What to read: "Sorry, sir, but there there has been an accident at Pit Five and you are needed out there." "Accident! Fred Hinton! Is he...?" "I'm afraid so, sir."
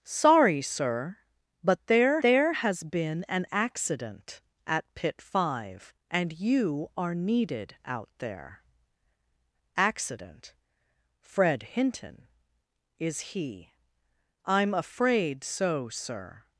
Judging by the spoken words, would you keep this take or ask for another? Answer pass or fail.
pass